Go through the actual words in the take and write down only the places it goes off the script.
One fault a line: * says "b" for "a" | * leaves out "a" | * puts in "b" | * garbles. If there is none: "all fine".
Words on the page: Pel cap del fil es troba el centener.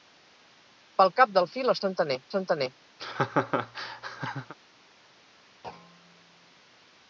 * says "centener" for "troba"